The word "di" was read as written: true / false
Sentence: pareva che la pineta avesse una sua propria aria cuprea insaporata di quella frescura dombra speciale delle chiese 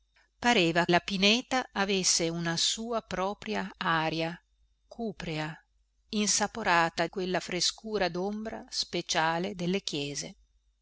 false